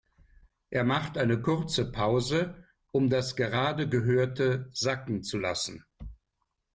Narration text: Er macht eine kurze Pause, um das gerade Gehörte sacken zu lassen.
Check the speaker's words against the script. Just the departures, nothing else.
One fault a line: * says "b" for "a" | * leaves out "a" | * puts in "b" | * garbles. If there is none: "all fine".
all fine